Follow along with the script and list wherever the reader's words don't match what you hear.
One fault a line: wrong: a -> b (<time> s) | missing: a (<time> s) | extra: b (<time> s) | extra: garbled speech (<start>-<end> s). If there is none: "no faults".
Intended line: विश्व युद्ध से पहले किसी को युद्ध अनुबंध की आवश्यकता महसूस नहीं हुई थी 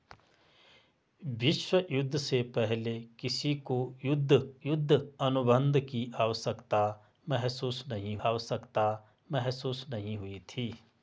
extra: युद्ध (4.7 s)
extra: आवश्यकता महसूस नहीं (8.3 s)